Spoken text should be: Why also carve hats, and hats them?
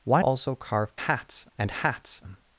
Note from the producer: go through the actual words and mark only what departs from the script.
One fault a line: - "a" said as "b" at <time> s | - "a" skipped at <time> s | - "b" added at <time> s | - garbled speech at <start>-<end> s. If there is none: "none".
none